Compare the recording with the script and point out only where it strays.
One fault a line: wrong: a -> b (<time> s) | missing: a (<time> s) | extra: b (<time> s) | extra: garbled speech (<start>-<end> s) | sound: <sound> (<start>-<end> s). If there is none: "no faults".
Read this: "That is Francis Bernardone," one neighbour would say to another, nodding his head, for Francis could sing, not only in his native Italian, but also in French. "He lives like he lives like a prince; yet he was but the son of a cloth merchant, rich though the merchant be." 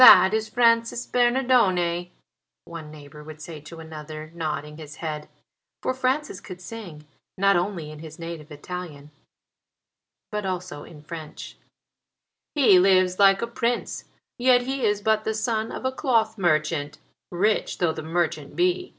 missing: he lives like (13.4 s)
wrong: was -> is (14.9 s)